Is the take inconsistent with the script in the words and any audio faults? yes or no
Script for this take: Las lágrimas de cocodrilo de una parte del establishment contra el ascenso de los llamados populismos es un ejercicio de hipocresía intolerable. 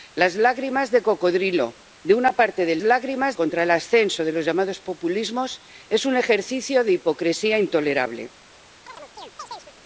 yes